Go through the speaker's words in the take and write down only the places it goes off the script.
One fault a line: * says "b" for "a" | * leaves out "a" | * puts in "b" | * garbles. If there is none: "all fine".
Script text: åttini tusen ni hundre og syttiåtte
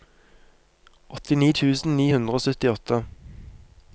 all fine